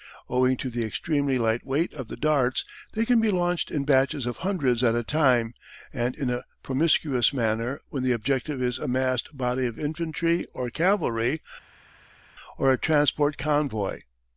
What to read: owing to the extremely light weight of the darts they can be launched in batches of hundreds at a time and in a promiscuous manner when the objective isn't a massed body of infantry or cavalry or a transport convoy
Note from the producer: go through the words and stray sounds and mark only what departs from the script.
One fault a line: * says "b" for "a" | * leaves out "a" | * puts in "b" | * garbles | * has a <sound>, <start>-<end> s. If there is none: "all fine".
* says "is" for "isn't"